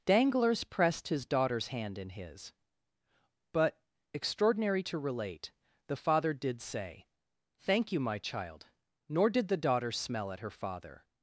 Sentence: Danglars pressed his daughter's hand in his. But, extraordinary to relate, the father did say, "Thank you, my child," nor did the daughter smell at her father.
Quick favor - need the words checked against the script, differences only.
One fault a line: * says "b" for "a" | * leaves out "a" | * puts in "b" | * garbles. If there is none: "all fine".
all fine